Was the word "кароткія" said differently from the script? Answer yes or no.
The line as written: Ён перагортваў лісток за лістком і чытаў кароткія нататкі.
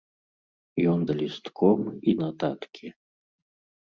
yes